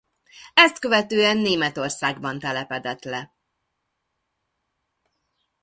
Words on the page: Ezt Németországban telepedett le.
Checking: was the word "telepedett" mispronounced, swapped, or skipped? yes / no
no